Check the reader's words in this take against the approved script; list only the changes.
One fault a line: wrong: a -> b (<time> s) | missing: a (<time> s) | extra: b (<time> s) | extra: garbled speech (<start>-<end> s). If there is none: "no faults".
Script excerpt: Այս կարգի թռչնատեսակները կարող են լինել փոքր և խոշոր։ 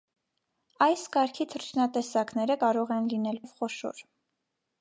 missing: փոքր (3.4 s)